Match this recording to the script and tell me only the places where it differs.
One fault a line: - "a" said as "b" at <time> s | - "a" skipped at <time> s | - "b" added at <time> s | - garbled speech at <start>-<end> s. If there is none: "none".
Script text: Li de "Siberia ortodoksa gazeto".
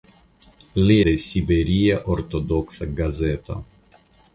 none